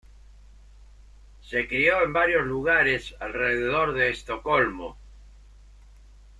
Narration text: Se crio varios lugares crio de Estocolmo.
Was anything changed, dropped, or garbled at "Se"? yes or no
no